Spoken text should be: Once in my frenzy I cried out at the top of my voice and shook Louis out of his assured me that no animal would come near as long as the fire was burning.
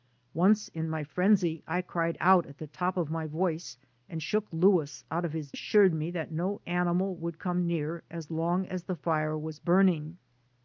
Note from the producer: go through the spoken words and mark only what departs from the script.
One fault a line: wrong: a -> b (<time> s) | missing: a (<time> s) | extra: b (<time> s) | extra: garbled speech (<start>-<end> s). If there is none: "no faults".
no faults